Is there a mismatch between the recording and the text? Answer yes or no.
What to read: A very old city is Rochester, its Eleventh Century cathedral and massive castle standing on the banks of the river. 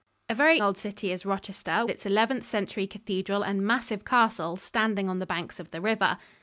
no